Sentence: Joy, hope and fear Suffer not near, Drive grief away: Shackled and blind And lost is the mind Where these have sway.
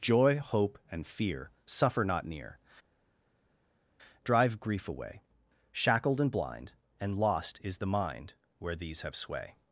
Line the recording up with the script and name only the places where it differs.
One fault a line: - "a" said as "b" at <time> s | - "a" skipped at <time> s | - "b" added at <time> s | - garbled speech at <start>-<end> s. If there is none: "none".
none